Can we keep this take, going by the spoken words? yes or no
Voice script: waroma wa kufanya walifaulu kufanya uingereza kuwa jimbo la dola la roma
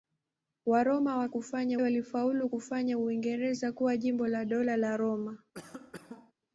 yes